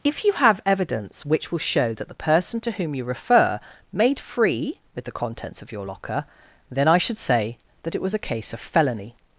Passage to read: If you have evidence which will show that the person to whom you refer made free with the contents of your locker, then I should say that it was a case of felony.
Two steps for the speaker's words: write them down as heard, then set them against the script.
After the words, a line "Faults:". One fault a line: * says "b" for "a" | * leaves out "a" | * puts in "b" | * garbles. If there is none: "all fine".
If you have evidence which will show that the person to whom you refer made free with the contents of your locker, then I should say that it was a case of felony.
Faults:
all fine